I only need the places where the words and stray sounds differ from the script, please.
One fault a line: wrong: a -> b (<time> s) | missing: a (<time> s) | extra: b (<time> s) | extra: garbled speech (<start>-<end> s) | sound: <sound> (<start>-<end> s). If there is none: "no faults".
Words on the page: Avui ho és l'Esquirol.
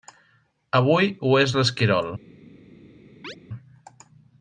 sound: chirp (3.2-3.4 s)